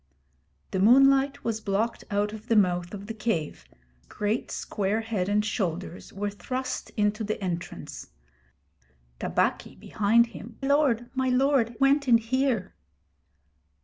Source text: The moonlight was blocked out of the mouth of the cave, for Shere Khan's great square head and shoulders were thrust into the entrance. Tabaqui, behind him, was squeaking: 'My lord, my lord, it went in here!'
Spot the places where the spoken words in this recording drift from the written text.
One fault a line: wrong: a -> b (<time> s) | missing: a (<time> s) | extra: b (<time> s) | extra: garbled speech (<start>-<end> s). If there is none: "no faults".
missing: for Shere Khan's (3.6 s)
missing: was squeaking My (10.6 s)
missing: it (11.8 s)